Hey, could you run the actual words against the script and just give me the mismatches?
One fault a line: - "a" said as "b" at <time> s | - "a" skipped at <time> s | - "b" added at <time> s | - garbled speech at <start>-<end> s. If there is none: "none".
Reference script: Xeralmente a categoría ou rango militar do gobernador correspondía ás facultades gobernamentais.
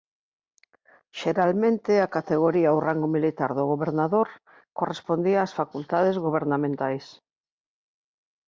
none